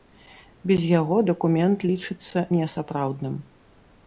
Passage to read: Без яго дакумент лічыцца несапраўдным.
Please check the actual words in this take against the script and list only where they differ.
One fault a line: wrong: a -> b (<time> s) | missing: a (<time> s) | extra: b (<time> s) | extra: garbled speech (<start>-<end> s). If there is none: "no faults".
no faults